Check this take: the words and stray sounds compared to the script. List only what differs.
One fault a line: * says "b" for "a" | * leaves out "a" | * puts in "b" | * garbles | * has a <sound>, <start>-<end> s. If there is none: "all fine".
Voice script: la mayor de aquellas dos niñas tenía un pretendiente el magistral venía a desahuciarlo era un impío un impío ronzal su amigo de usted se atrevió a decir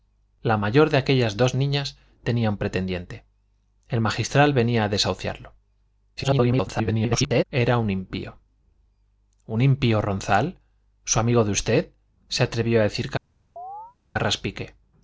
* garbles
* has a chirp, 13.6-14.0 s